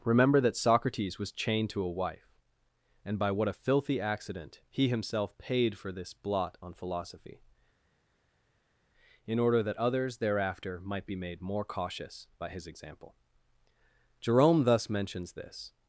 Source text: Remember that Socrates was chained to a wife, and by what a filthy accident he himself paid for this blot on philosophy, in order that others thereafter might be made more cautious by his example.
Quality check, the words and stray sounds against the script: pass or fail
fail